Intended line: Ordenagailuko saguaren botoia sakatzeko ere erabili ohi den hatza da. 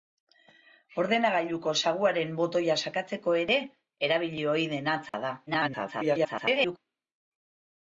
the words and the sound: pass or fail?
fail